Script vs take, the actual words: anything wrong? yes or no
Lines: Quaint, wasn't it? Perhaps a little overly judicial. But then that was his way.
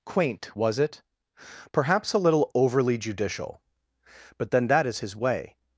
yes